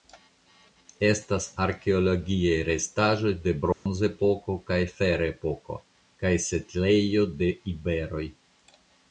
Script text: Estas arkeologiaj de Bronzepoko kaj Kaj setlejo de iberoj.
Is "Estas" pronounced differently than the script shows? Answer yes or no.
no